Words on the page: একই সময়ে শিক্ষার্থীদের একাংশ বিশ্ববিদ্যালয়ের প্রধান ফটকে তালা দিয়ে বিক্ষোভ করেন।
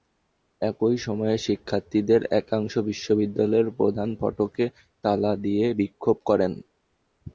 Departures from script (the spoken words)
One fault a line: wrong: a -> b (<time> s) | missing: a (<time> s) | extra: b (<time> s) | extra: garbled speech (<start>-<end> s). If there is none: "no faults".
no faults